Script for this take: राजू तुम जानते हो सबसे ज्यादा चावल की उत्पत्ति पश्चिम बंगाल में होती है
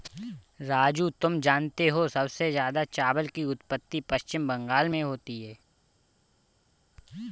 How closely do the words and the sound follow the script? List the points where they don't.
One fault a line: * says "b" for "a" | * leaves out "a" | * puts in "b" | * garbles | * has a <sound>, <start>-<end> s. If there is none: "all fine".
all fine